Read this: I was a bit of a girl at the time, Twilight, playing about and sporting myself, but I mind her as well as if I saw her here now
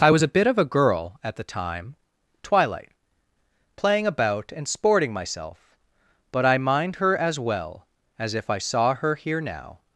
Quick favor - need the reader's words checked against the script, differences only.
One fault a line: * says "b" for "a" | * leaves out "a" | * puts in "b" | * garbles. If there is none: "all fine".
all fine